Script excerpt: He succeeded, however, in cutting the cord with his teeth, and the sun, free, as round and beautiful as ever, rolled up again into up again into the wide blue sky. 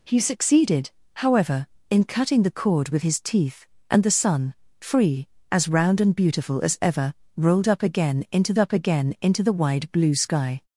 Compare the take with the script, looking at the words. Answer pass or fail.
pass